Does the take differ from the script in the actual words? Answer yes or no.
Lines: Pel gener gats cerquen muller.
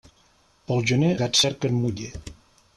no